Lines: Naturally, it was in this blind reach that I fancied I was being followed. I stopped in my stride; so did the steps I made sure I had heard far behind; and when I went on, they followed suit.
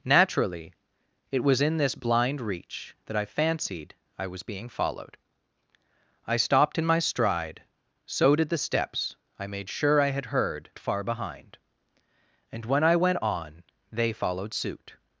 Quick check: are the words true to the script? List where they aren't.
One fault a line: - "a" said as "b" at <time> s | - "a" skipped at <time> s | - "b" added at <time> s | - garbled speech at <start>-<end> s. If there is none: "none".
none